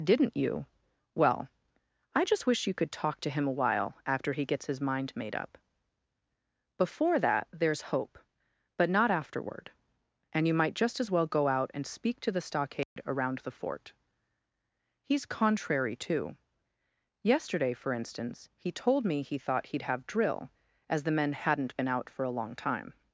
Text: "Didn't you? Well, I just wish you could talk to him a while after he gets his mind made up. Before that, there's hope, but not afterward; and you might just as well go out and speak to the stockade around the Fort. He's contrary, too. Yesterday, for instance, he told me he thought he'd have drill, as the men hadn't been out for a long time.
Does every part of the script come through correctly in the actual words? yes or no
yes